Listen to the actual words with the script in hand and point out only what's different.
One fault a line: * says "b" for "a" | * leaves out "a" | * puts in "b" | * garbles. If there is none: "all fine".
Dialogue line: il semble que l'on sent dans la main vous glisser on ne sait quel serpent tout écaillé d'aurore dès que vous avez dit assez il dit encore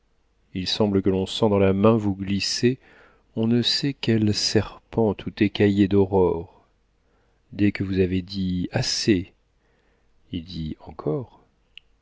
all fine